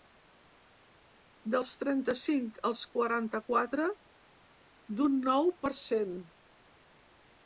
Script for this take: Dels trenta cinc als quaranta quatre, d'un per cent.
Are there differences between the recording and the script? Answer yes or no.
yes